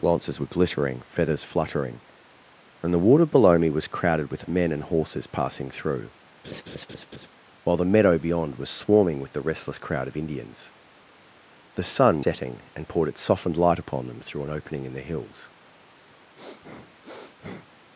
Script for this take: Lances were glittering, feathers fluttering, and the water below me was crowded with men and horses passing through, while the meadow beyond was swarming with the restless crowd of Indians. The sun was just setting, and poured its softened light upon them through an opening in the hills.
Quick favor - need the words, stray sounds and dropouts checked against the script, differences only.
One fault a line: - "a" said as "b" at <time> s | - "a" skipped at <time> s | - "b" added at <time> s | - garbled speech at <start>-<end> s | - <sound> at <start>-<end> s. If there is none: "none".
- laugh at 6.4-7.3 s
- "was just" skipped at 12.2 s
- sniff at 16.3-17.7 s